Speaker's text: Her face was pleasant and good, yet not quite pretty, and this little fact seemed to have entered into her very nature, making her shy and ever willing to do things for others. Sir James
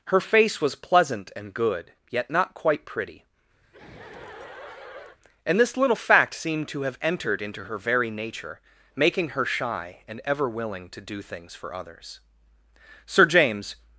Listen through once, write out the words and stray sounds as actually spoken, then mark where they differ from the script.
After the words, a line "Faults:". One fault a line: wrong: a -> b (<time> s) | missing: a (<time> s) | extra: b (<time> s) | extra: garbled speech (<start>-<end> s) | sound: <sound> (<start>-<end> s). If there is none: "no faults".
Her face was pleasant and good, yet not quite pretty, and this little fact seemed to have entered into her very nature, making her shy and ever willing to do things for others. Sir James
Faults:
sound: laugh (3.6-5.2 s)